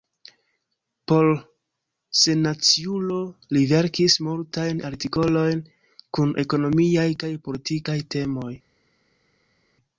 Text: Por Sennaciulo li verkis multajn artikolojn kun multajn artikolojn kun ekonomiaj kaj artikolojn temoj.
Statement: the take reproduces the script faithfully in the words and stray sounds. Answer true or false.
false